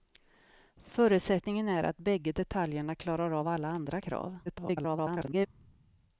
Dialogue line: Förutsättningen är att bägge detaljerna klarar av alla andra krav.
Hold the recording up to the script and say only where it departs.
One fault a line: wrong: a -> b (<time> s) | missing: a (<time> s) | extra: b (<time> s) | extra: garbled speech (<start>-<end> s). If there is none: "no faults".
extra: garbled speech (4.5-5.5 s)